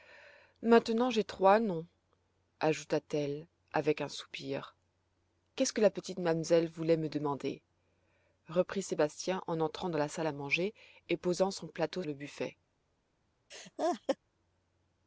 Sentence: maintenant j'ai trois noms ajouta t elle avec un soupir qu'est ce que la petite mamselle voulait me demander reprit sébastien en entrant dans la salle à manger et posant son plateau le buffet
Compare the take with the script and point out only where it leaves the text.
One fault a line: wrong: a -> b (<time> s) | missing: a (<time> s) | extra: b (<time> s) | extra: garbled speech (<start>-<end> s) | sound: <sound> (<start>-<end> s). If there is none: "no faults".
sound: laugh (13.5-14.2 s)